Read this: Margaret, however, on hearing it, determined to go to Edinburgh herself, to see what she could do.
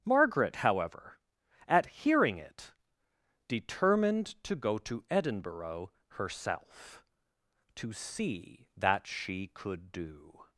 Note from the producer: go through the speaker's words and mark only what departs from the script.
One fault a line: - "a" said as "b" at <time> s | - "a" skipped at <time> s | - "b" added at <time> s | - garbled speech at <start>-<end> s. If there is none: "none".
- "on" said as "at" at 1.7 s
- "what" said as "that" at 8.8 s